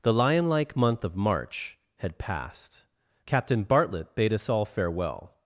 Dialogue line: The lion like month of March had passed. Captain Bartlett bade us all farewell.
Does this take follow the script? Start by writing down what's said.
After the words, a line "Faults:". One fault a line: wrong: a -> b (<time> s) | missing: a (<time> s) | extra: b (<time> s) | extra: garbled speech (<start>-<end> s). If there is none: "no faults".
The lion like month of March had passed. Captain Bartlett bade us all farewell.
Faults:
no faults